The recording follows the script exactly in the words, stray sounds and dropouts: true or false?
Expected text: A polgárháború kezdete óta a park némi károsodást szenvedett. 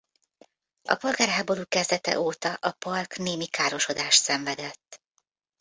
true